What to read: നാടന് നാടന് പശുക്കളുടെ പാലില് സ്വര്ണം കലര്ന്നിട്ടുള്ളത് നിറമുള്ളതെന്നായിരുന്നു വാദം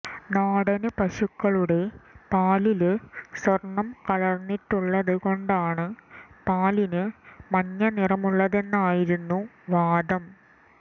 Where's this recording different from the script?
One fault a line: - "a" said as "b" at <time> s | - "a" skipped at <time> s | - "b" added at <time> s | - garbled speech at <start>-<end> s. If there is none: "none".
- "നാടന്" skipped at 0.9 s
- "കൊണ്ടാണ് പാലിന് മഞ്ഞ" added at 5.2 s